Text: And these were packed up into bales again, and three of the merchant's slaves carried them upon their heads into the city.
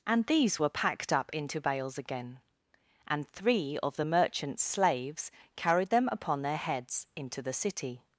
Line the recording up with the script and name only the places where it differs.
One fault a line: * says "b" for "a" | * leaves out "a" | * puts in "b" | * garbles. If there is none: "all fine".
all fine